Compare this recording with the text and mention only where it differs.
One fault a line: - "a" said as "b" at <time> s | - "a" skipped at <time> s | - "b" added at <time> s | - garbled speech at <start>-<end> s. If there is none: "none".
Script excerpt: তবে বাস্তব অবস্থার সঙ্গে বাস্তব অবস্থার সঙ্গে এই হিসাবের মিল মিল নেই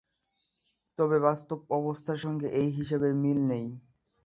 - "বাস্তব অবস্থার সঙ্গে" skipped at 2.5 s
- "মিল" skipped at 3.4 s